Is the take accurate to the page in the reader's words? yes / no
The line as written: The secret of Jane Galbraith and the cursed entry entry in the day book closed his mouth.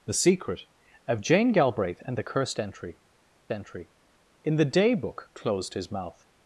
yes